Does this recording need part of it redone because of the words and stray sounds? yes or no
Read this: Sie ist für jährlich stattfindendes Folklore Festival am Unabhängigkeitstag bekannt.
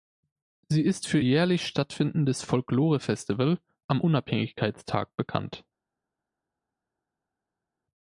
no